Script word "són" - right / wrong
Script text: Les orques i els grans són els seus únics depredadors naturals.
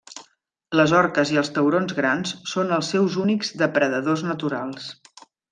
right